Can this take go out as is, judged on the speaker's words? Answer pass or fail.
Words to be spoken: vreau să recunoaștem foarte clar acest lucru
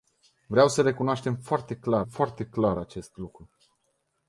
fail